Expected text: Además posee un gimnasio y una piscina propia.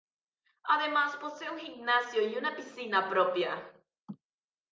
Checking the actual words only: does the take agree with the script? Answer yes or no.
yes